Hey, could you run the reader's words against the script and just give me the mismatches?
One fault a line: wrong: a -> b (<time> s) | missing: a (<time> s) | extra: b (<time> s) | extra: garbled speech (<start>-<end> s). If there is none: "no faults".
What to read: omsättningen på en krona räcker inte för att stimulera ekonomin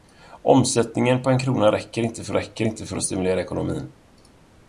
extra: räcker inte för (2.3 s)